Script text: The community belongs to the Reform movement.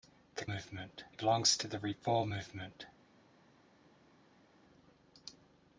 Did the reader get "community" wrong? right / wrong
wrong